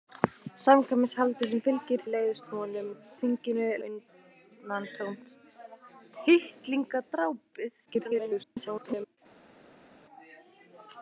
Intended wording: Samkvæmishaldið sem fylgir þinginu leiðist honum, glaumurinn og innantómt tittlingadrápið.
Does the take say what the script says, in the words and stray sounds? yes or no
no